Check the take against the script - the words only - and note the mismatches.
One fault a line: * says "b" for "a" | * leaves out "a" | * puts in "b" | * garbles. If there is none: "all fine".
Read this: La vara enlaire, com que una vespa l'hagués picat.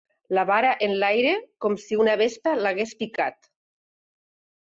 * says "si" for "que"